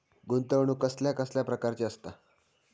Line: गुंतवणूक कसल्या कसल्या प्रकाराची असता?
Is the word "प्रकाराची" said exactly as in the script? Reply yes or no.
yes